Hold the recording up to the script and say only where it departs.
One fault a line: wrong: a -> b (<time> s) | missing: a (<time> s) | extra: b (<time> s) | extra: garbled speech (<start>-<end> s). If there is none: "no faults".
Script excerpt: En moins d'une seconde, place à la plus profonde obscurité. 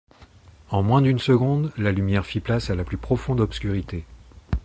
extra: la lumière fit (1.8 s)